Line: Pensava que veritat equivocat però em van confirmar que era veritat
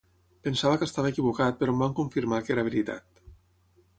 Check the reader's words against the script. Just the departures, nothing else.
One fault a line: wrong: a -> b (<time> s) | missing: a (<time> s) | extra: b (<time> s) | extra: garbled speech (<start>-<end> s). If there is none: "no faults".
wrong: veritat -> estava (0.9 s)